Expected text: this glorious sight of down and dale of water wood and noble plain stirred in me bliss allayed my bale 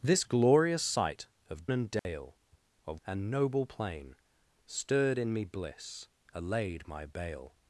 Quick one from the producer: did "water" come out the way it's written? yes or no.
no